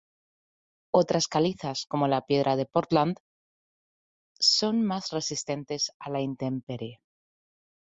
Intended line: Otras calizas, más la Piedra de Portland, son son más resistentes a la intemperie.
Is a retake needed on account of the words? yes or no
yes